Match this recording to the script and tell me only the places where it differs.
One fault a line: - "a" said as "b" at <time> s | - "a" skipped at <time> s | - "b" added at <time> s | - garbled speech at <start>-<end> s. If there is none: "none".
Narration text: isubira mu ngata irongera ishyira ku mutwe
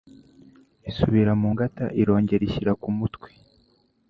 none